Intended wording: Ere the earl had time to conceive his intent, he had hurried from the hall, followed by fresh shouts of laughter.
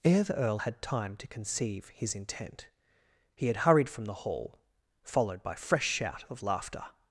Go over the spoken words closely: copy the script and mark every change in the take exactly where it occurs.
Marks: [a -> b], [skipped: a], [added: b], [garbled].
Ere the earl had time to conceive his intent, he had hurried from the hall, followed by fresh [shouts -> shout] of laughter.